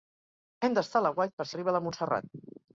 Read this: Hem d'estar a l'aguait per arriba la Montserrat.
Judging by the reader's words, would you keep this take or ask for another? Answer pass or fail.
pass